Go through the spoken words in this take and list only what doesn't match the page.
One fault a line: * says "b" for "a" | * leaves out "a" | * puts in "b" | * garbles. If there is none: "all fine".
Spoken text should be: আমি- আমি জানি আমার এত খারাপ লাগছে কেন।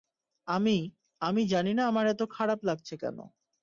* puts in "না"